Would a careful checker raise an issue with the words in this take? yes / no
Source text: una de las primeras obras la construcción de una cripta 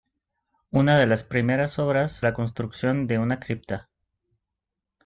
no